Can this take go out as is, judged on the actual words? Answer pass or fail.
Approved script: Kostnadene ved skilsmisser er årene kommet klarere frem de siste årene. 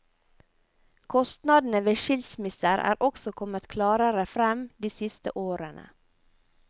fail